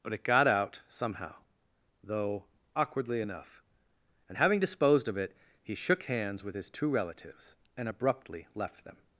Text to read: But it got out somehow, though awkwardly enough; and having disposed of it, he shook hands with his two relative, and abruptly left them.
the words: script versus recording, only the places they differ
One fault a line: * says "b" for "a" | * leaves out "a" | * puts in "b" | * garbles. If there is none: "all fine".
* says "relatives" for "relative"